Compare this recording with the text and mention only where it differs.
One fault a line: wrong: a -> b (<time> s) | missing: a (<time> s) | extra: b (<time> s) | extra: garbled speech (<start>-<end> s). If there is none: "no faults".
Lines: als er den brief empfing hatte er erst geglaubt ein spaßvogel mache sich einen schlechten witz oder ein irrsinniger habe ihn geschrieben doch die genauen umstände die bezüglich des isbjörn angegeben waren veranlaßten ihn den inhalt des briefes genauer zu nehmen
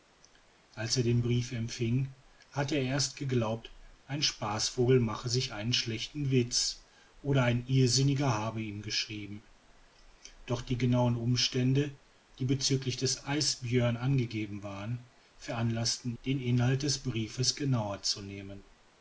missing: ihn (16.1 s)